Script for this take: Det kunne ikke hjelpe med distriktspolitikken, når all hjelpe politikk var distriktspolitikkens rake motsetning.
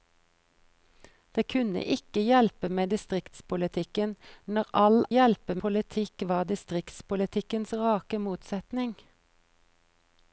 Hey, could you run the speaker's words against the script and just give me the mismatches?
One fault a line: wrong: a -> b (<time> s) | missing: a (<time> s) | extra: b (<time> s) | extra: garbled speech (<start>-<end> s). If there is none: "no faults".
no faults